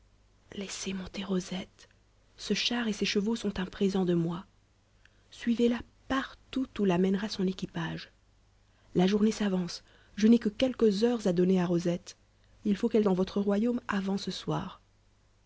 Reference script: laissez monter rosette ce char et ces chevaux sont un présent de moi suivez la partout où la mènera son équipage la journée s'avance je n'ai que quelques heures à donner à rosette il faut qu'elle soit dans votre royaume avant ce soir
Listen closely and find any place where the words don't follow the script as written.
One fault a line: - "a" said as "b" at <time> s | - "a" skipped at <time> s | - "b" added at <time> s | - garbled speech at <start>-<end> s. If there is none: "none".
- "soit" skipped at 13.1 s